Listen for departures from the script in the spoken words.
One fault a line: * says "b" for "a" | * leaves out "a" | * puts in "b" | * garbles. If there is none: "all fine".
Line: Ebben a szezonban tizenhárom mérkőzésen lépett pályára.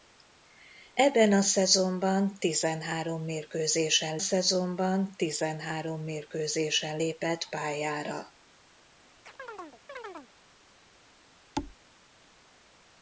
* puts in "szezonban tizenhárom mérkőzésen"